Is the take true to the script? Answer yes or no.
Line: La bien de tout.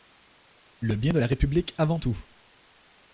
no